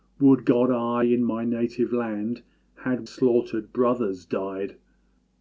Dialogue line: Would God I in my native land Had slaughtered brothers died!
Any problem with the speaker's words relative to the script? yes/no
no